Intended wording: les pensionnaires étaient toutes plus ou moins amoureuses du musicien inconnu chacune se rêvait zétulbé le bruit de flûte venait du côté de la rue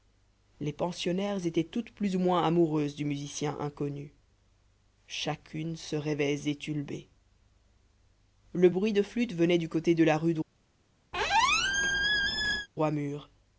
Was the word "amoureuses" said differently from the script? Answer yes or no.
no